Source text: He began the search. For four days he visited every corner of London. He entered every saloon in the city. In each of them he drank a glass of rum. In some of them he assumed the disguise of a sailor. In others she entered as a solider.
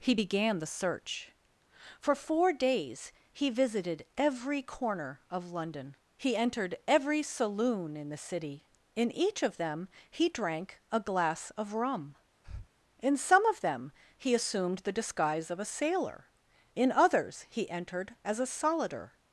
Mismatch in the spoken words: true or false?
true